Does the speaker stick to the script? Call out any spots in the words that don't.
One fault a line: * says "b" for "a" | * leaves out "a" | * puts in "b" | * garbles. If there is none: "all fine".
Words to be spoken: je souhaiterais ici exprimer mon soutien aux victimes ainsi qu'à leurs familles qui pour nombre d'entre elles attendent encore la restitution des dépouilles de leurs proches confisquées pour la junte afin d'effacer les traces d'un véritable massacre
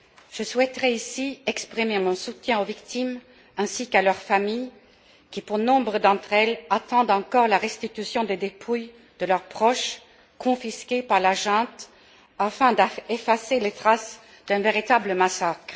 * says "par" for "pour"